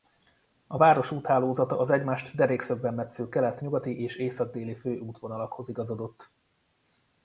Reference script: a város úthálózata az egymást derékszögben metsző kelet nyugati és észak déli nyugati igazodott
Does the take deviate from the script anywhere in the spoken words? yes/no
yes